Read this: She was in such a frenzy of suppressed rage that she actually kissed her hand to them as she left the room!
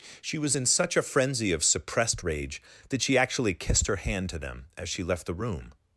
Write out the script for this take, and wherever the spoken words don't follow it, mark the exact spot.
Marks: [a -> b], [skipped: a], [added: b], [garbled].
She was in such a frenzy of suppressed rage that she actually kissed her hand to them as she left the room!